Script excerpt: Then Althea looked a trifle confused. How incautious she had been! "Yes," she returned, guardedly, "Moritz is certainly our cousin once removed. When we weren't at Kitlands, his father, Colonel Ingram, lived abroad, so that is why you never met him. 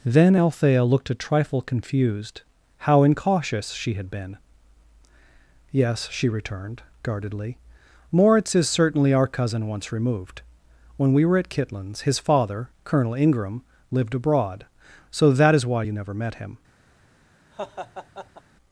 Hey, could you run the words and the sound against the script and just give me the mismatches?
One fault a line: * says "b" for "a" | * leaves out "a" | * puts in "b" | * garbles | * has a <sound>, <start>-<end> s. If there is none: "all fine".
* says "were" for "weren't"
* has a laugh, 17.5-18.4 s